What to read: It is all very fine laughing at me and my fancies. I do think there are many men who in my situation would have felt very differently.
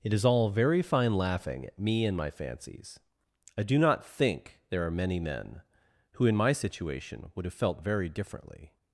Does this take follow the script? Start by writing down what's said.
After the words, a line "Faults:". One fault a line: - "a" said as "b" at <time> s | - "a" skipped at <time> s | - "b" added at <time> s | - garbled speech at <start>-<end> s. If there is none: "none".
It is all very fine laughing at me and my fancies. I do not think there are many men who in my situation would have felt very differently.
Faults:
- "not" added at 3.8 s